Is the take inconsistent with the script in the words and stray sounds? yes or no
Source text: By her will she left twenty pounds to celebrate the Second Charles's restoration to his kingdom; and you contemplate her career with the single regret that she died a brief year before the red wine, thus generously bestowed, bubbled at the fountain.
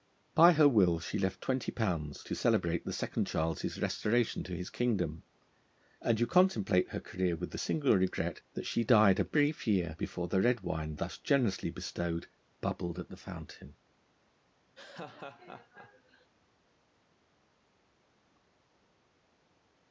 yes